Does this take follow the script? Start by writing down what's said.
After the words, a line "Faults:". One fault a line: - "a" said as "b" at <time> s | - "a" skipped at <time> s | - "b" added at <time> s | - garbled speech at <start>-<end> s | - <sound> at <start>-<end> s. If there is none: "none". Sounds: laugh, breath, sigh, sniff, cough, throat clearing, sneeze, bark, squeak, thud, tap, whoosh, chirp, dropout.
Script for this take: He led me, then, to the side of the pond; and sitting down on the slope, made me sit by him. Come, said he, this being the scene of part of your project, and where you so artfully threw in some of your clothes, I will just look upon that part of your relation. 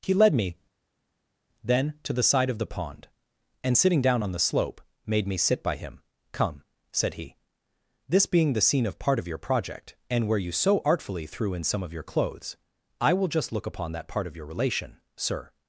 He led me, then, to the side of the pond; and sitting down on the slope, made me sit by him. Come, said he, this being the scene of part of your project, and where you so artfully threw in some of your clothes, I will just look upon that part of your relation. Sir
Faults:
- "Sir" added at 15.2 s